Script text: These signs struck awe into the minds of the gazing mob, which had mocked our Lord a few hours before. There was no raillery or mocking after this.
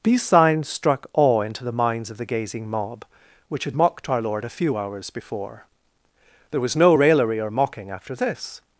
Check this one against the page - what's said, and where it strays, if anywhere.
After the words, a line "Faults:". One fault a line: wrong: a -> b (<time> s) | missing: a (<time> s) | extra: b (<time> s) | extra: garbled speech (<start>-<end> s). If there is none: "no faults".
These signs struck awe into the minds of the gazing mob, which had mocked our Lord a few hours before. There was no raillery or mocking after this.
Faults:
no faults